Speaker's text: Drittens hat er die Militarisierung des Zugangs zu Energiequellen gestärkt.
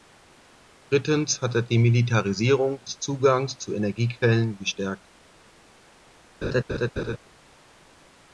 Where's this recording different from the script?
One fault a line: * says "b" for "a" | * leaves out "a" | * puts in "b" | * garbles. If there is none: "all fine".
all fine